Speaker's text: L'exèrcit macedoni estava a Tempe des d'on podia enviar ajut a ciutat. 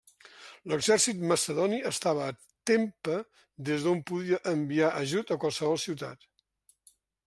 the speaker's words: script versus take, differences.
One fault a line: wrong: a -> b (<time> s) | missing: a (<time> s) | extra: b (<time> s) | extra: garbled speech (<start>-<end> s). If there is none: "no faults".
extra: qualsevol (5.4 s)